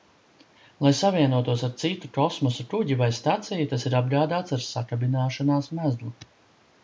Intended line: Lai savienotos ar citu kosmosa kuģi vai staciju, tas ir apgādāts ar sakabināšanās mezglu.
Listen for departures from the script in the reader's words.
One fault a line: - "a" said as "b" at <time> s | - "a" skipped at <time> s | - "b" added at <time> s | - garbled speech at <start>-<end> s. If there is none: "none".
none